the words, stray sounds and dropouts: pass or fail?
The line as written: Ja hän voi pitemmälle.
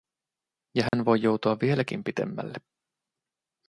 fail